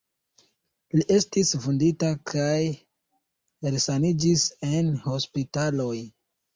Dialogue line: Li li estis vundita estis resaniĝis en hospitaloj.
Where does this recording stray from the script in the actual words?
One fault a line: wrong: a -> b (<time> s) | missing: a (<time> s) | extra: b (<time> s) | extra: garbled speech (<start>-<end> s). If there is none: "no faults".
missing: li (1.1 s)
wrong: estis -> kaj (2.3 s)